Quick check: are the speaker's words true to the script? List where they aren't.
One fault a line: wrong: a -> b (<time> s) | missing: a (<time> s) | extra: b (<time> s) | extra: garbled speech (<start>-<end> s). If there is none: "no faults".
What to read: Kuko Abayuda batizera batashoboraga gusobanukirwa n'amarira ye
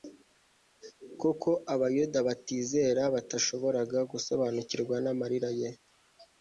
no faults